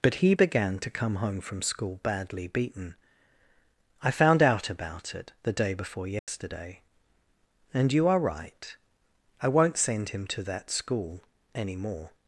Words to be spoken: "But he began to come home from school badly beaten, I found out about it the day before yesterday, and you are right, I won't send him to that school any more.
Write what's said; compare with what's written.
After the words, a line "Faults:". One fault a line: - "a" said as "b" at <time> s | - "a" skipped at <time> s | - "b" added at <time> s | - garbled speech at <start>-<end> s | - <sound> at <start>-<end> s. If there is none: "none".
"But he began to come home from school badly beaten, I found out about it the day before yesterday, and you are right, I won't send him to that school any more.
Faults:
- dropout at 6.2-6.3 s